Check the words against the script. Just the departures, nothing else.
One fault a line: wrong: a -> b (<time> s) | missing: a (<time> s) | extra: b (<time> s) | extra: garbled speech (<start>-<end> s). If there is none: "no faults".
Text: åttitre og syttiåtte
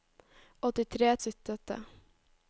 no faults